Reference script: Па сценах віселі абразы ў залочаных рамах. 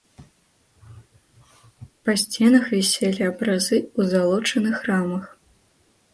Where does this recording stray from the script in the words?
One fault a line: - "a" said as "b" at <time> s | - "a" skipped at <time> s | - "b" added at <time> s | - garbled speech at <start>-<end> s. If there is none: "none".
none